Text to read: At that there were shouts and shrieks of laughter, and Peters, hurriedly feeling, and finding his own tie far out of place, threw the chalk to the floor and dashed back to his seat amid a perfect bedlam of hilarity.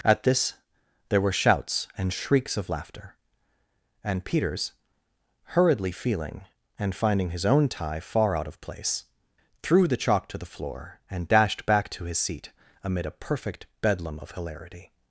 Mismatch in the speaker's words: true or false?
true